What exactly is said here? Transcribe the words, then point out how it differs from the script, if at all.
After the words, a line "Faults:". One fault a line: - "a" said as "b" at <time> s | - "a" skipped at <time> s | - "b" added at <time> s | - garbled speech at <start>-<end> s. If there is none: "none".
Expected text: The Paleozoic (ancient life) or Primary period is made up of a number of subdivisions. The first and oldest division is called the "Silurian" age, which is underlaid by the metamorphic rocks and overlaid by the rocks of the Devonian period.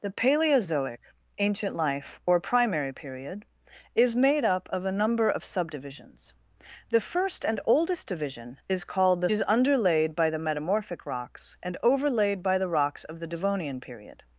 The Paleozoic (ancient life) or Primary period is made up of a number of subdivisions. The first and oldest division is called the "Is underlaid by the metamorphic rocks and overlaid by the rocks of the Devonian period.
Faults:
- "Silurian age which" skipped at 9.3 s